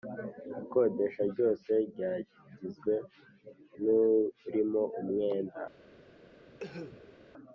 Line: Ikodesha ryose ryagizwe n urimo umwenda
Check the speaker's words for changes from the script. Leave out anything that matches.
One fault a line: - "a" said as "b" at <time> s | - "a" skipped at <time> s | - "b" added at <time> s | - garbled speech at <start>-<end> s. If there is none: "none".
none